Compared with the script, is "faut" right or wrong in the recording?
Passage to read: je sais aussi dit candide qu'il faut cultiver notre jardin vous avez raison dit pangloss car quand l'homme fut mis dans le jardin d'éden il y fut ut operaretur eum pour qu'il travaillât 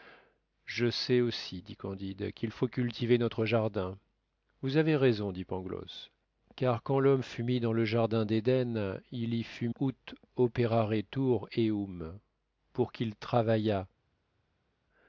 right